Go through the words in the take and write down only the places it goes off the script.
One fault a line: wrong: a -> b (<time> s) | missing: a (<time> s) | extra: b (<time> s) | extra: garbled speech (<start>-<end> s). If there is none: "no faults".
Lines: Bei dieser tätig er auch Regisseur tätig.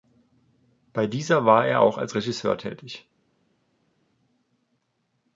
wrong: tätig -> war (1.4 s)
extra: als (2.0 s)